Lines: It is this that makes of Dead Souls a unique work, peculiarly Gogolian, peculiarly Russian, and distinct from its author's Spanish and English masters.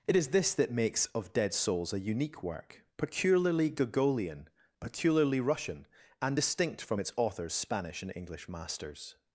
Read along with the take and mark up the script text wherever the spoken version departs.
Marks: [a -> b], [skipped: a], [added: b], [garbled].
It is this that makes of Dead Souls a unique work, peculiarly Gogolian, peculiarly Russian, and distinct from its author's Spanish and English masters.